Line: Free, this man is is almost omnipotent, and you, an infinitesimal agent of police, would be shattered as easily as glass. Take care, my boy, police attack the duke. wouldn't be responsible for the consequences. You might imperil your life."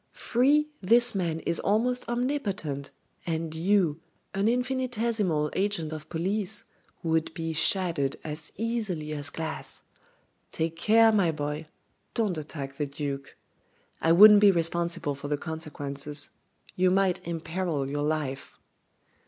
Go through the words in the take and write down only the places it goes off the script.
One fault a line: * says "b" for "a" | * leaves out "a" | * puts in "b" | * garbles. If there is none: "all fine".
* leaves out "is"
* says "don't" for "police"
* puts in "I"